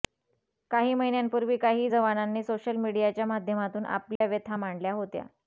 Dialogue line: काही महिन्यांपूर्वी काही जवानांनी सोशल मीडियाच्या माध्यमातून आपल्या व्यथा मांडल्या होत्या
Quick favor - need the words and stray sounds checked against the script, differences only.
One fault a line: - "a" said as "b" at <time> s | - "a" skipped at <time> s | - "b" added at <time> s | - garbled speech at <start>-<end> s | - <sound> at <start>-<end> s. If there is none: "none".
- dropout at 4.2-4.2 s